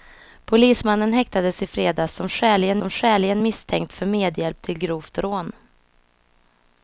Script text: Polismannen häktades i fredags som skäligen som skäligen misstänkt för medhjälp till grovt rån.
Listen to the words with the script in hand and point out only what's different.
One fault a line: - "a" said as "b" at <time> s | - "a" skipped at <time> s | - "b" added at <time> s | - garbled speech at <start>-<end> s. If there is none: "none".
none